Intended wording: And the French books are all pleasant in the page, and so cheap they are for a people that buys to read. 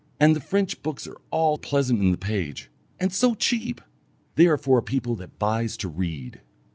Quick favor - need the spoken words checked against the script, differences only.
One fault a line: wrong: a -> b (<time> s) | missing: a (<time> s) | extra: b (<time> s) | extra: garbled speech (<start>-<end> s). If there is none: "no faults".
no faults